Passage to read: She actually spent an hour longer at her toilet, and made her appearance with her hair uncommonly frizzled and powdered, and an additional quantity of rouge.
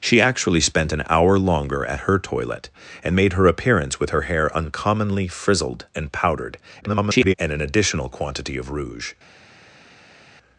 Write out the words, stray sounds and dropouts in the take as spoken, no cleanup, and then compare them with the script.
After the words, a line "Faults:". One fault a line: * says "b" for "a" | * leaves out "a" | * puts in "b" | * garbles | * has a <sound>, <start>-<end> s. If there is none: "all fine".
She actually spent an hour longer at her toilet, and made her appearance with her hair uncommonly frizzled and powdered, [garbled] and an additional quantity of rouge.
Faults:
* garbles